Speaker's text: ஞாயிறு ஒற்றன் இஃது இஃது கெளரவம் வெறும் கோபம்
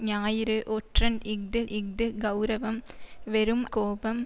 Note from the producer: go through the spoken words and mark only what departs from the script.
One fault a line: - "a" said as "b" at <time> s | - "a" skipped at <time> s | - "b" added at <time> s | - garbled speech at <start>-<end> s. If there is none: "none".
none